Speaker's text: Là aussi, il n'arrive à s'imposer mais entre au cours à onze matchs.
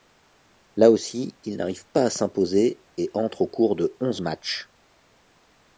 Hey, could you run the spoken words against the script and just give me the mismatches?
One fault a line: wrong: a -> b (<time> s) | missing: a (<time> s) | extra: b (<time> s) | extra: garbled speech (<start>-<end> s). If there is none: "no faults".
extra: pas (1.9 s)
wrong: mais -> et (3.0 s)
wrong: à -> de (3.8 s)